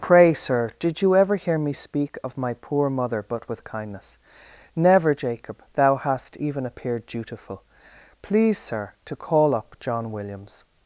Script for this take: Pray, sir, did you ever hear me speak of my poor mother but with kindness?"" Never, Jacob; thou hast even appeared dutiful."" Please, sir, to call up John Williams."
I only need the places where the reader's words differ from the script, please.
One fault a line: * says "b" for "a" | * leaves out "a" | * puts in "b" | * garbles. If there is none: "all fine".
all fine